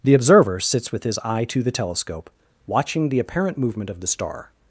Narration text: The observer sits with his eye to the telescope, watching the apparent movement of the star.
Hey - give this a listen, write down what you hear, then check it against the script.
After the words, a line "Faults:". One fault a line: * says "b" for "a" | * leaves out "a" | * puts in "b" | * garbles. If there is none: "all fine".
The observer sits with his eye to the telescope, watching the apparent movement of the star.
Faults:
all fine